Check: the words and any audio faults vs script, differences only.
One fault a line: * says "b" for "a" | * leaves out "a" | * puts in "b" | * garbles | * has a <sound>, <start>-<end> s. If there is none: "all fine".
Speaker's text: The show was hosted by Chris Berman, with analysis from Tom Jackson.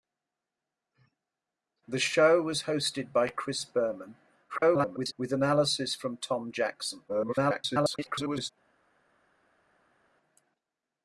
* garbles
* garbles